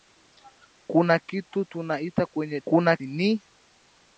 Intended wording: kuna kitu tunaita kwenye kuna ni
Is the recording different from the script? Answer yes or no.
no